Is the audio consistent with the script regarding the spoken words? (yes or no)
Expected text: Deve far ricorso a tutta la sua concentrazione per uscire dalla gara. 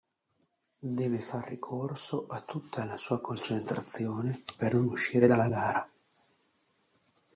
no